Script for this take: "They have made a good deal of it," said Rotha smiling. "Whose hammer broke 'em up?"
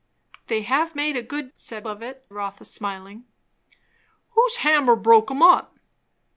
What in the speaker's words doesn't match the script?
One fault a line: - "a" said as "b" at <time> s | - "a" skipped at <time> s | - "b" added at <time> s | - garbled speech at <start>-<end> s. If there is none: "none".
- "deal" said as "said" at 1.6 s
- "said" skipped at 2.2 s